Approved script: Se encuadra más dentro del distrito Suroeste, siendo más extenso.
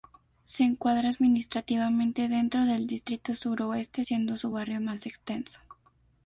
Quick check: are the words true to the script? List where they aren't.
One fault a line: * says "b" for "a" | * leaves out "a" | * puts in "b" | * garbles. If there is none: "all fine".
* says "administrativamente" for "más"
* puts in "su barrio"